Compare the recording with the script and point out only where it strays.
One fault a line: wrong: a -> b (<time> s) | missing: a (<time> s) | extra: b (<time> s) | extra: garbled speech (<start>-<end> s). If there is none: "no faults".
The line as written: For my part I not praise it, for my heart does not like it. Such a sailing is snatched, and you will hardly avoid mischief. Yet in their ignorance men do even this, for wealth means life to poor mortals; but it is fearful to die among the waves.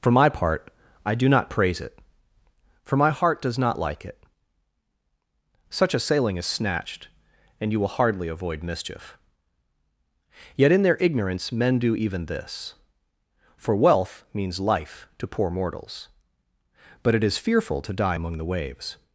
extra: do (1.1 s)